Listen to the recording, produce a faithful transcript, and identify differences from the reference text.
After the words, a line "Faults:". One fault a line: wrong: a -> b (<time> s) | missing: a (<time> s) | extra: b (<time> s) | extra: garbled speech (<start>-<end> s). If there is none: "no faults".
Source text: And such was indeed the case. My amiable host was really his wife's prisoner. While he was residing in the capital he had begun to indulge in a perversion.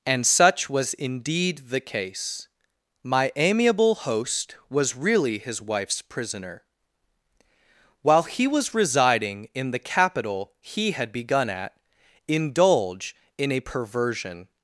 And such was indeed the case. My amiable host was really his wife's prisoner. While he was residing in the capital he had begun at indulge in a perversion.
Faults:
wrong: to -> at (11.5 s)